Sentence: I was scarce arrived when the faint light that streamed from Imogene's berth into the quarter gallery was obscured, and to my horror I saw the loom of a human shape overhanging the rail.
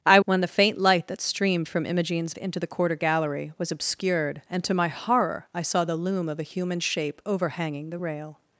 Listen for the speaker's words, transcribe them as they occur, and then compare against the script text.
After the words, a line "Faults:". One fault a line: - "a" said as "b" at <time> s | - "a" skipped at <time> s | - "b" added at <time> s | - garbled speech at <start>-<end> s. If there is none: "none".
I when the faint light that streamed from Imogene's into the quarter gallery was obscured, and to my horror I saw the loom of a human shape overhanging the rail.
Faults:
- "was scarce arrived" skipped at 0.2 s
- "berth" skipped at 2.3 s